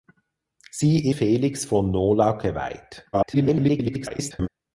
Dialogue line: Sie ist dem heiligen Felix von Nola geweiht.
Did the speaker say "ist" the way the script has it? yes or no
no